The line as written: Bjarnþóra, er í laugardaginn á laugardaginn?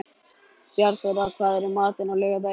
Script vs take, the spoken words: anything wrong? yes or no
yes